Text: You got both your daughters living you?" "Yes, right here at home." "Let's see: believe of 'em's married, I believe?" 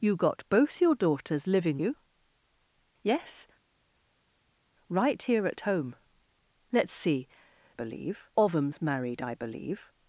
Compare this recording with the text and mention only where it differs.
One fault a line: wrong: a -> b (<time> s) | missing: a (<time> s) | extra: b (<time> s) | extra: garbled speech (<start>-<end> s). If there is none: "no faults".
no faults